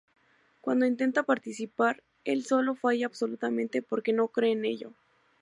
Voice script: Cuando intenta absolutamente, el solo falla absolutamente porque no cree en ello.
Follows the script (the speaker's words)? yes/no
no